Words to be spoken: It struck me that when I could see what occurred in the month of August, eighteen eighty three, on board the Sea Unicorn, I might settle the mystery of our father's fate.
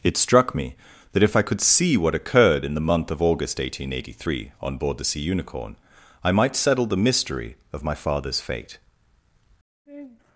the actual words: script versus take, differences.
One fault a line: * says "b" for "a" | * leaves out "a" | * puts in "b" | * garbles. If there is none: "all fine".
* says "if" for "when"
* says "my" for "our"